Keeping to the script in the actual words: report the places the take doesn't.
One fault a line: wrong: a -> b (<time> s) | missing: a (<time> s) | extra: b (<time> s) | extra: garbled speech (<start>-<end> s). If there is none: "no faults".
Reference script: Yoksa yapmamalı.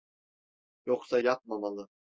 no faults